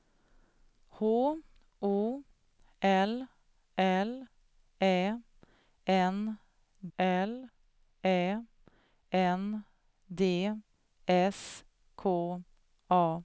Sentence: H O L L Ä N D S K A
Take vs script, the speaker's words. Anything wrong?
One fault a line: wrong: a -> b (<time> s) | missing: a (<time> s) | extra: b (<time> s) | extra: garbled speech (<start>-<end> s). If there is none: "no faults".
extra: L Ä N (7.0 s)